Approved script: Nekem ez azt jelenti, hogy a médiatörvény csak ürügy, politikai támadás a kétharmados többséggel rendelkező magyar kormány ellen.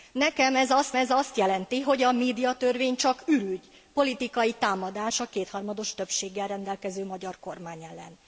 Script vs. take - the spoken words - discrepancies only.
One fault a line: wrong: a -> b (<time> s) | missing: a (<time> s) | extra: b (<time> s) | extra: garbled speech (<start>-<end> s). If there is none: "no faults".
extra: ez azt (0.9 s)